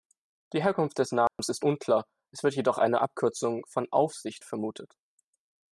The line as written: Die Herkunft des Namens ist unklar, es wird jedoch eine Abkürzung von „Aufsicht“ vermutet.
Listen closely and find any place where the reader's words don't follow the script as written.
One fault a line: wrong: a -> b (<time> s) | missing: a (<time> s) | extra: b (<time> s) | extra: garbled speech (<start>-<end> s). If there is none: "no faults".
no faults